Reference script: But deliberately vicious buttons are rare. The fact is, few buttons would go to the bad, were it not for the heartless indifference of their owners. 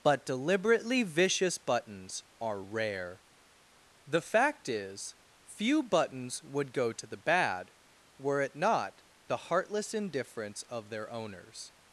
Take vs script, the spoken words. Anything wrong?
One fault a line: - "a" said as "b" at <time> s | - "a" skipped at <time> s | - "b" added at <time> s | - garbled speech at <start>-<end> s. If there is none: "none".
- "for" skipped at 9.0 s